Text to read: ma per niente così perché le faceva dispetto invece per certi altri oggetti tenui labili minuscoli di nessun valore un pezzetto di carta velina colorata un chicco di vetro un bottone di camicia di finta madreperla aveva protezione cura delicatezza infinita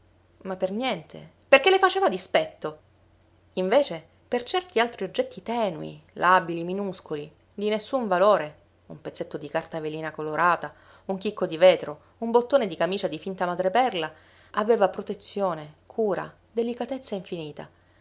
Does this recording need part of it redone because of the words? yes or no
yes